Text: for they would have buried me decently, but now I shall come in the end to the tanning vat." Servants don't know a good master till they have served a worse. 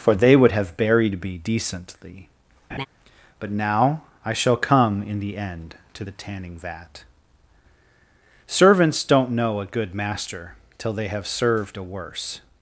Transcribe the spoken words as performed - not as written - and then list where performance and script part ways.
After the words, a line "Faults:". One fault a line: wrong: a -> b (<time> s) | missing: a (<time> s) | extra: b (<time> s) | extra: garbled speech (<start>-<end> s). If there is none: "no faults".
for they would have buried me decently, but now I shall come in the end to the tanning vat." Servants don't know a good master till they have served a worse.
Faults:
no faults